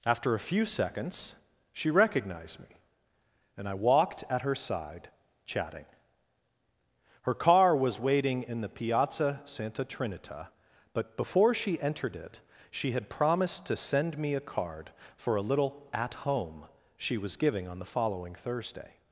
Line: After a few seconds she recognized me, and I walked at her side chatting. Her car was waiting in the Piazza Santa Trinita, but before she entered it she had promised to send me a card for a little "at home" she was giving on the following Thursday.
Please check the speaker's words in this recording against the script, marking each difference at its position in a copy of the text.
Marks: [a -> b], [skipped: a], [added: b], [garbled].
After a few seconds she recognized me, and I walked at her side chatting. Her car was waiting in the Piazza Santa Trinita, but before she entered it she had promised to send me a card for a little "at home" she was giving on the following Thursday.